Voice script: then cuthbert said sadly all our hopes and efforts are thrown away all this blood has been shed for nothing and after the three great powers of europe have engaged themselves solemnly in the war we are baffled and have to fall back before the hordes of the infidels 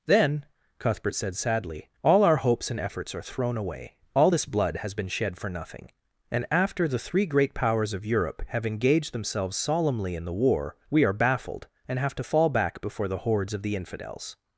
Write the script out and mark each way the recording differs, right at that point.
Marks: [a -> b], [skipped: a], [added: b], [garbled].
then cuthbert said sadly all our hopes and efforts are thrown away all this blood has been shed for nothing and after the three great powers of europe have engaged themselves solemnly in the war we are baffled and have to fall back before the hordes of the infidels